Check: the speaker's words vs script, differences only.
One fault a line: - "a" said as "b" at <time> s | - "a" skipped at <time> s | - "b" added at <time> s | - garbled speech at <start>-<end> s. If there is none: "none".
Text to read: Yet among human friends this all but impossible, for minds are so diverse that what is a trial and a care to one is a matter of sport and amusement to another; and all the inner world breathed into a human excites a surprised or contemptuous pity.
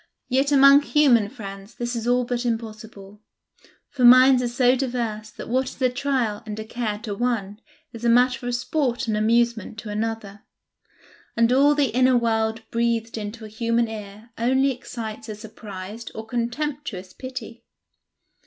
- "is" added at 1.9 s
- "ear only" added at 13.9 s